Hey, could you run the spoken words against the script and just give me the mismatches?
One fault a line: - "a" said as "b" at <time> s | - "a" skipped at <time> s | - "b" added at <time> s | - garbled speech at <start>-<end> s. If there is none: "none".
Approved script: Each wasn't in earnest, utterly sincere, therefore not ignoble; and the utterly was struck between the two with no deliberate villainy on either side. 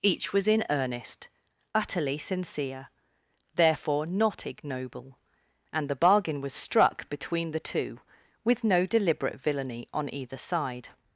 - "wasn't" said as "was" at 0.3 s
- "utterly" said as "bargain" at 6.0 s